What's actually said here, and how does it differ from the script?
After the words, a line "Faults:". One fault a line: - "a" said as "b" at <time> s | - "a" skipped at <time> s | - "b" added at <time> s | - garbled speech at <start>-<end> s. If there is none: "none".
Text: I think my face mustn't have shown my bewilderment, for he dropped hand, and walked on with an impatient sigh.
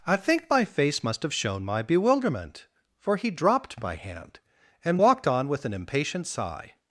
I think my face must have shown my bewilderment, for he dropped my hand, and walked on with an impatient sigh.
Faults:
- "mustn't" said as "must" at 1.0 s
- "my" added at 3.8 s